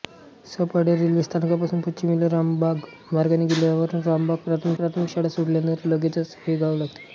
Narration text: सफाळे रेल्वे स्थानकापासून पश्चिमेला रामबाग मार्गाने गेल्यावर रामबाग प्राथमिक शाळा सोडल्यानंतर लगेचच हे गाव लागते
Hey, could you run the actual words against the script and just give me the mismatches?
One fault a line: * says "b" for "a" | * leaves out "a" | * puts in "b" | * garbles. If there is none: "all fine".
* puts in "प्राथमिक"